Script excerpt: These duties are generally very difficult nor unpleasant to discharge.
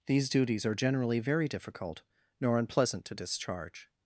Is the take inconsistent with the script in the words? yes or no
no